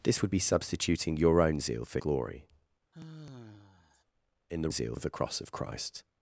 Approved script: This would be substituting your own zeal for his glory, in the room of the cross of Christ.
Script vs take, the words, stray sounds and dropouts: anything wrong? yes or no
yes